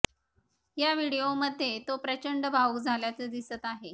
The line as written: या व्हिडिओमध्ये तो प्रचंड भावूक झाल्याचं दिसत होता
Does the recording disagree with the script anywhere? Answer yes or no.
yes